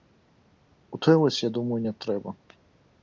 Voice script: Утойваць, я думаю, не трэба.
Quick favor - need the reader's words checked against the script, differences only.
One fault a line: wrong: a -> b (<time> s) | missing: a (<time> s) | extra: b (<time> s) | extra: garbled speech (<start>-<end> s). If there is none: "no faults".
no faults